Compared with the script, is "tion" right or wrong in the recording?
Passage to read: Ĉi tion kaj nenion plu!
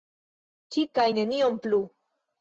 wrong